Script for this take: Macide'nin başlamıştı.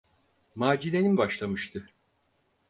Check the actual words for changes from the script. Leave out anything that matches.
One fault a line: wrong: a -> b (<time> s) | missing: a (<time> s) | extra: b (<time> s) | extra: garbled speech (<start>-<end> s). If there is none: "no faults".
no faults